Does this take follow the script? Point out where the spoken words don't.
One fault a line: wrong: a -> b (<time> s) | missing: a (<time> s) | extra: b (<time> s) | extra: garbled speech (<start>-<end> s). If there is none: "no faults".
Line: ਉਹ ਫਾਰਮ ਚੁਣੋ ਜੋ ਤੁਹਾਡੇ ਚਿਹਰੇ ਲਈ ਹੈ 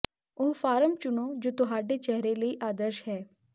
extra: ਆਦਰਸ਼ (2.6 s)